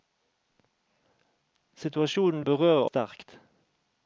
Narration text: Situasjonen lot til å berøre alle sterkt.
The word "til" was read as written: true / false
false